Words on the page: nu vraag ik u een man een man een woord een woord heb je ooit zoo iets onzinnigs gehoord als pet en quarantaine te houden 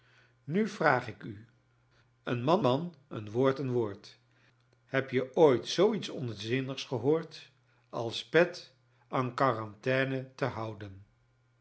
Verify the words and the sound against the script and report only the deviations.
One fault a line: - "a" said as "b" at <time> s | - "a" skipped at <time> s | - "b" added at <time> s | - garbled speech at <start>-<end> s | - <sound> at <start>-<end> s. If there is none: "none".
- "een" skipped at 2.6 s